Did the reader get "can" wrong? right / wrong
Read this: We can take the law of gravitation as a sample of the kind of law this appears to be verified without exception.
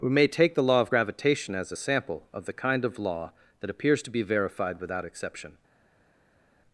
wrong